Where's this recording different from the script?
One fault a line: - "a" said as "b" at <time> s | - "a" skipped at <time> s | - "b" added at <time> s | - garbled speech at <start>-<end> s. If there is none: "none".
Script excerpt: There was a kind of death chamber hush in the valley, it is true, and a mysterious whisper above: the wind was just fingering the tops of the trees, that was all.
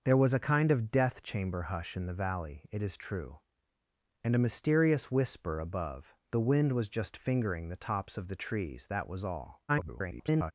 - garbled speech at 9.7-10.5 s